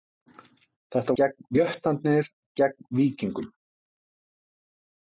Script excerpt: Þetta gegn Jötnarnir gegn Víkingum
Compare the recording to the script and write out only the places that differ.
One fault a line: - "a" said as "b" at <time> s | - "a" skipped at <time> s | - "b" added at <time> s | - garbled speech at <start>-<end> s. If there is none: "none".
none